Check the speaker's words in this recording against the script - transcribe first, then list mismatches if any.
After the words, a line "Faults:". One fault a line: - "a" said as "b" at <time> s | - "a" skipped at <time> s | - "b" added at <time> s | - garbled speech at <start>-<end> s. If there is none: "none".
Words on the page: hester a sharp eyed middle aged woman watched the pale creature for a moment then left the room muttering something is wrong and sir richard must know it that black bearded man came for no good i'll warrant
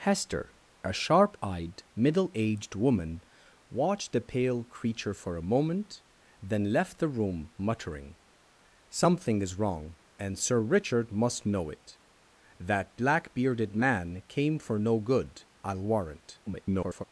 hester a sharp eyed middle aged woman watched the pale creature for a moment then left the room muttering something is wrong and sir richard must know it that black bearded man came for no good i'll warrant [garbled]
Faults:
- garbled speech at 16.5-17.0 s